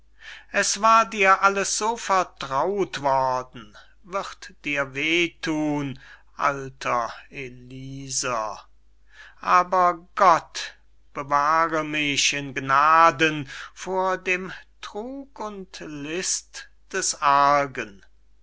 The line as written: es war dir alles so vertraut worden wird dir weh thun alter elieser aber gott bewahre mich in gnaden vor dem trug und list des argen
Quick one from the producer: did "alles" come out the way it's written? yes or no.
yes